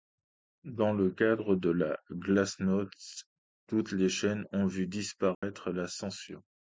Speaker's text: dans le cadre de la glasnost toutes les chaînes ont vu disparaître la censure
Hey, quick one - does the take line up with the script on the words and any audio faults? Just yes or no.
no